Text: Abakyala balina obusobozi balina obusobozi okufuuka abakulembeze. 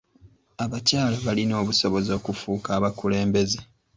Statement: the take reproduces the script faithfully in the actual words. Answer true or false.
false